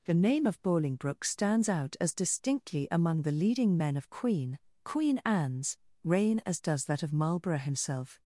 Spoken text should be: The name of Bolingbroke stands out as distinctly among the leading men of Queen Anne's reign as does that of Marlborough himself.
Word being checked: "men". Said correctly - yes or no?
yes